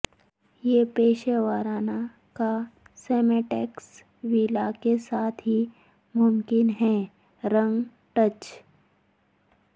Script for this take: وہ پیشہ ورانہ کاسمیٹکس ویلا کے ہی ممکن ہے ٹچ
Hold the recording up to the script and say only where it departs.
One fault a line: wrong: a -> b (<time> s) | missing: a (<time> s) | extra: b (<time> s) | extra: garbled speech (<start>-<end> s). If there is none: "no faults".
wrong: وہ -> یہ (0.6 s)
extra: ساتھ (5.0 s)
extra: رنگ (7.4 s)